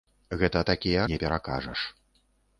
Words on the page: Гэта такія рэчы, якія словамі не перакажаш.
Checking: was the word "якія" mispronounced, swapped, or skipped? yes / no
yes